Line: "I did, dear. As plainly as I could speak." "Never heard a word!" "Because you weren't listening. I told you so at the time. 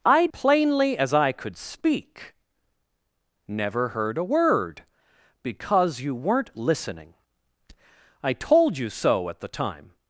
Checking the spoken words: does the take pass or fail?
fail